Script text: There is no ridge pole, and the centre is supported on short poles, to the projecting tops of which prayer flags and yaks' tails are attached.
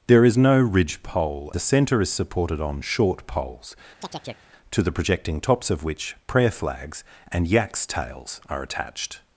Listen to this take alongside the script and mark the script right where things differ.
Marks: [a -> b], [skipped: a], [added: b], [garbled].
There is no ridge pole, [skipped: and] the centre is supported on short poles, to the projecting tops of which prayer flags and yaks' tails are attached.